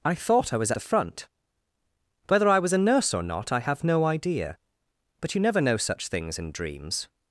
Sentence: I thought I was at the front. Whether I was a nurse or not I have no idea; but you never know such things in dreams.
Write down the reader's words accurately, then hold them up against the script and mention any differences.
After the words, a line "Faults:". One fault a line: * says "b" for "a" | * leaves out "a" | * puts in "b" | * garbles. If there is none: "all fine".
I thought I was the front. Whether I was a nurse or not I have no idea; but you never know such things in dreams.
Faults:
* leaves out "at"